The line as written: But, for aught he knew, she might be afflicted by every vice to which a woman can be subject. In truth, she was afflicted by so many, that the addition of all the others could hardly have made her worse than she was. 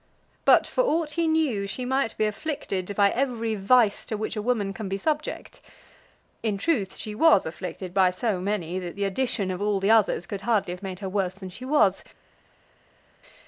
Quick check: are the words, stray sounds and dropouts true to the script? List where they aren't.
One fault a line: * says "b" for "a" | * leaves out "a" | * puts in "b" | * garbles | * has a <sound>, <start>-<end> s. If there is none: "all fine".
all fine